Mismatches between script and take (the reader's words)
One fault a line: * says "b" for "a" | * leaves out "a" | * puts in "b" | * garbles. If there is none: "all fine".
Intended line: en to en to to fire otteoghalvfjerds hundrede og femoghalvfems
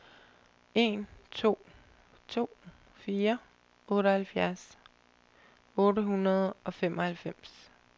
* leaves out "en"
* leaves out "to"
* puts in "otte"